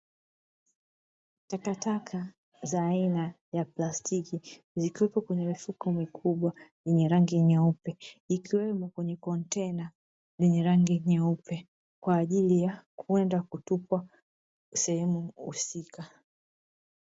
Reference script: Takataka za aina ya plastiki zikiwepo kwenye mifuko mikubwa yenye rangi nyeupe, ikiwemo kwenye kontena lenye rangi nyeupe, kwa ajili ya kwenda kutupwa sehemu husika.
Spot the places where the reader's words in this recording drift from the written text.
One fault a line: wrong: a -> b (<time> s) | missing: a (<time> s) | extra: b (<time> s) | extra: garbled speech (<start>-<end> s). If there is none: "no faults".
no faults